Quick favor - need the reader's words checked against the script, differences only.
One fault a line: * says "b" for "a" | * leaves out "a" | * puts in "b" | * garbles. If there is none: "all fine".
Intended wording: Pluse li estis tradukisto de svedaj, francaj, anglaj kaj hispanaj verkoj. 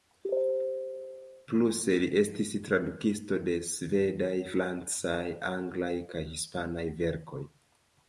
all fine